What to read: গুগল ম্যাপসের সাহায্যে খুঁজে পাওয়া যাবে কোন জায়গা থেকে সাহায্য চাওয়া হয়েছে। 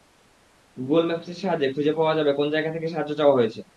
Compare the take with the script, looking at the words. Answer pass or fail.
pass